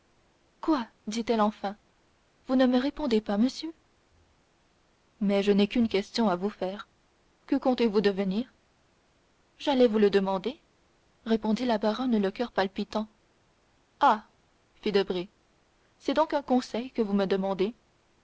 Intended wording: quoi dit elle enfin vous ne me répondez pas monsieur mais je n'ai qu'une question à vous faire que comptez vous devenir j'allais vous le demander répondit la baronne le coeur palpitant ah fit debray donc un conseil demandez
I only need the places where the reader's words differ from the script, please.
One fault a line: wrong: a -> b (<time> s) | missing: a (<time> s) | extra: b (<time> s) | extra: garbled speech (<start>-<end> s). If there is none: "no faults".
extra: c'est (16.0 s)
extra: que vous me (16.9 s)